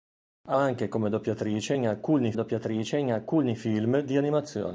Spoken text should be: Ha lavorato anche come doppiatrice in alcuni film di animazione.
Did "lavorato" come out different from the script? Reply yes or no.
yes